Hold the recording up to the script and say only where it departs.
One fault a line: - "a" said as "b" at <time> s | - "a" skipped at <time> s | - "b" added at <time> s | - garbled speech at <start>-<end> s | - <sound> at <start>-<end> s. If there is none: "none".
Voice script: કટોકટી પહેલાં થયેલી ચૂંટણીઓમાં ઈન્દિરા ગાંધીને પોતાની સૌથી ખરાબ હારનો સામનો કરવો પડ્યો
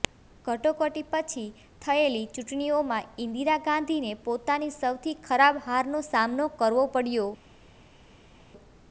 - "પહેલાં" said as "પછી" at 1.1 s